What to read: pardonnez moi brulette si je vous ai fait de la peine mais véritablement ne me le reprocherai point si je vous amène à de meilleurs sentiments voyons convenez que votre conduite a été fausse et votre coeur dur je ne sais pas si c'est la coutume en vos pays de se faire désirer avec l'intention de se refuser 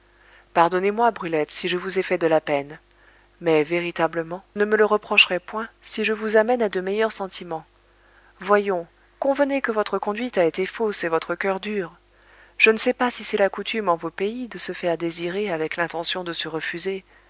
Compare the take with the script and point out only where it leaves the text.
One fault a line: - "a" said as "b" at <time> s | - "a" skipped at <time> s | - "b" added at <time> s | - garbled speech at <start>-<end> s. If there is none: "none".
none